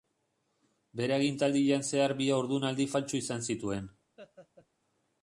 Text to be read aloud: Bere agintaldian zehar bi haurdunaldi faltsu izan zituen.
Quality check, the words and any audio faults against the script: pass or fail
fail